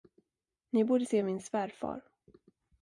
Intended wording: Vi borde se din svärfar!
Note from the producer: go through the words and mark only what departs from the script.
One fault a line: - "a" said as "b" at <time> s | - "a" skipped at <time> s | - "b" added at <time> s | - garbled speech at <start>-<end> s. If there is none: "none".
- "Vi" said as "Ni" at 0.7 s
- "din" said as "min" at 1.2 s